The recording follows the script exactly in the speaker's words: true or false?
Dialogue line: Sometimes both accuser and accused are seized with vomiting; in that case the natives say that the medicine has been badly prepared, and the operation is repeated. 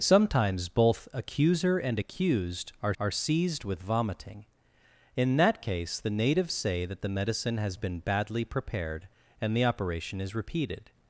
false